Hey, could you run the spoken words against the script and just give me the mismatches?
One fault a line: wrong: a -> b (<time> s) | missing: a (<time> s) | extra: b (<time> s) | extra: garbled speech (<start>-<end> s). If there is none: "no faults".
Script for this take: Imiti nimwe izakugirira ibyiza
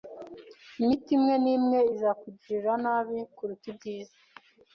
extra: imwe (1.2 s)
extra: nabi kuruta (2.8 s)